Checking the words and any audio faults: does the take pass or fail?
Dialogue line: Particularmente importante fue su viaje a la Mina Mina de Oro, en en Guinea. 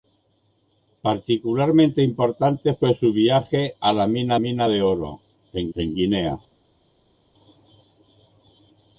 pass